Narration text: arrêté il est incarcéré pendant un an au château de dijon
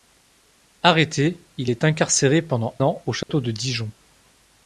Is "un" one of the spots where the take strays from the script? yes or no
yes